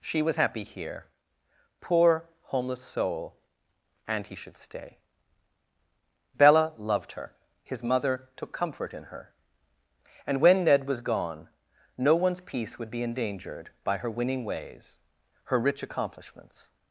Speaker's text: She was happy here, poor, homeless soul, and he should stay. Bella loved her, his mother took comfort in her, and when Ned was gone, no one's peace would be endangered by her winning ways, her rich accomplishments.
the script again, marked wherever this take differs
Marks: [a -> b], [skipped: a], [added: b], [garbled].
She was happy here, poor, homeless soul, and he should stay. Bella loved her, his mother took comfort in her, and when Ned was gone, no one's peace would be endangered by her winning ways, her rich accomplishments.